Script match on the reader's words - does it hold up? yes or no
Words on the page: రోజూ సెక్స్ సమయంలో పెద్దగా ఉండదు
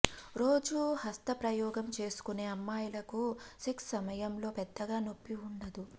no